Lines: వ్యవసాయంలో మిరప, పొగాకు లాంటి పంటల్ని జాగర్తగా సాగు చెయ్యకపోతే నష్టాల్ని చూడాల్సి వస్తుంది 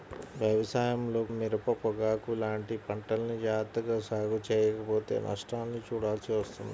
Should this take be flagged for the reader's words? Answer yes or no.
no